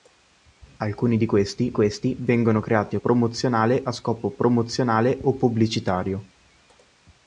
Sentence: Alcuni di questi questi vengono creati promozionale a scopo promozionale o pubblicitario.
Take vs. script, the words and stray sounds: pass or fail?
pass